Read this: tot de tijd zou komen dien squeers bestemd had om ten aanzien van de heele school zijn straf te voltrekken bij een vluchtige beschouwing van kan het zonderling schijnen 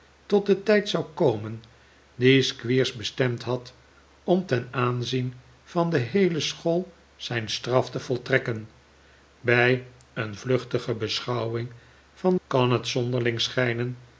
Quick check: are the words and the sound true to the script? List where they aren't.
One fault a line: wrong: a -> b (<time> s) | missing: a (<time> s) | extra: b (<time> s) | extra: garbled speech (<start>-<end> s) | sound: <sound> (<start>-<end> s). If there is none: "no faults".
no faults